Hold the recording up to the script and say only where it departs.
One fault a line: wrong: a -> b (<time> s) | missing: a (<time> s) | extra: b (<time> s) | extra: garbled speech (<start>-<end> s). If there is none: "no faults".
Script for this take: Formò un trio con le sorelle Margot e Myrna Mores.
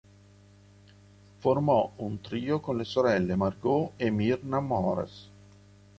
no faults